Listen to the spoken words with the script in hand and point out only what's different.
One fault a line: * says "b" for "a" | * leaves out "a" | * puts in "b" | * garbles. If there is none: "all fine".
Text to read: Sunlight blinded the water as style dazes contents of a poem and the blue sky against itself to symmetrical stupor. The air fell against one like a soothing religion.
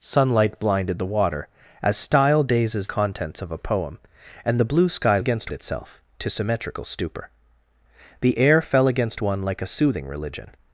all fine